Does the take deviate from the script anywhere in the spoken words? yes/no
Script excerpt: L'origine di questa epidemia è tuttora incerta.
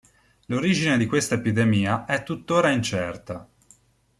no